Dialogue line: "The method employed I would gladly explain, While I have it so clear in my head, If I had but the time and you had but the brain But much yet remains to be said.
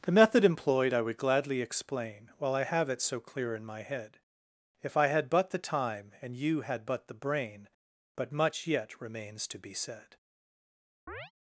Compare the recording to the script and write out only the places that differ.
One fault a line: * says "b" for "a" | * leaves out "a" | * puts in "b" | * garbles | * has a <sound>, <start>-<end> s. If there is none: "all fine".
* has a chirp, 11.1-11.3 s